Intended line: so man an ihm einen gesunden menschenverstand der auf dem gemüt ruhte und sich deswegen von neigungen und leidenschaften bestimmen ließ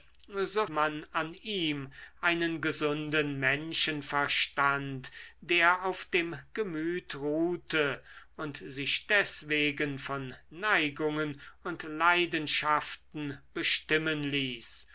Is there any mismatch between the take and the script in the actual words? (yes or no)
no